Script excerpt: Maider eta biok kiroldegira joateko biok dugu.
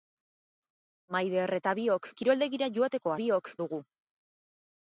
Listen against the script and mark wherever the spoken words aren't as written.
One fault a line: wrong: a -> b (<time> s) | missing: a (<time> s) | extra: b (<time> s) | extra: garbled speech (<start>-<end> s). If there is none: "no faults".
no faults